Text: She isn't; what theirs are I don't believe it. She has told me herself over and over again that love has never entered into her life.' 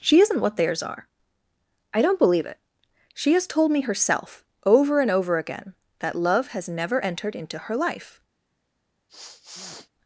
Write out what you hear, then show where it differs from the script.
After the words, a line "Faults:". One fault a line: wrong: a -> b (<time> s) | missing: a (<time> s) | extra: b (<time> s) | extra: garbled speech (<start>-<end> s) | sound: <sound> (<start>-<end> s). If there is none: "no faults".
She isn't; what theirs are I don't believe it. She has told me herself over and over again that love has never entered into her life.'
Faults:
sound: sniff (9.1-9.9 s)